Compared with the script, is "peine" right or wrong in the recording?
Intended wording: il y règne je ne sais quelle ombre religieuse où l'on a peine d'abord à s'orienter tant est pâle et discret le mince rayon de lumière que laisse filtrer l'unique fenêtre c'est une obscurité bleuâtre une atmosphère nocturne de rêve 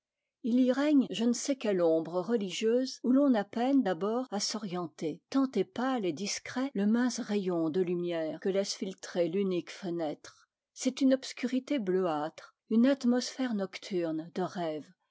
right